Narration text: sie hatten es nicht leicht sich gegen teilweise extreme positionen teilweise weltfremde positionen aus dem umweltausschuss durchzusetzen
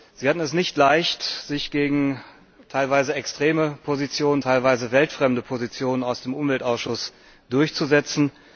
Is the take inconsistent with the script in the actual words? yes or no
no